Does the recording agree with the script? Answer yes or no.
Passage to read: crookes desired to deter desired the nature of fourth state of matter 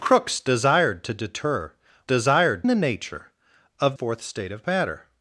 yes